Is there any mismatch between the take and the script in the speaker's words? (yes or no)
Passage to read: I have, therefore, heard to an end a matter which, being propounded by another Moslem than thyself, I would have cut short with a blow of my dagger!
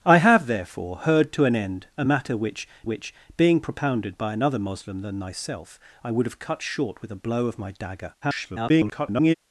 yes